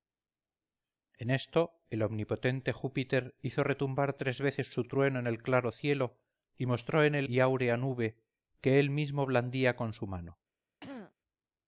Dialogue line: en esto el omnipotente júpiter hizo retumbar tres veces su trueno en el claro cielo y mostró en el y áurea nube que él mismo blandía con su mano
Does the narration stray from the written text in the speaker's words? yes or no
no